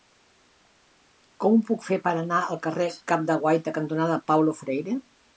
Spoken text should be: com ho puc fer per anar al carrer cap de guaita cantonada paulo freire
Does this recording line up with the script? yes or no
yes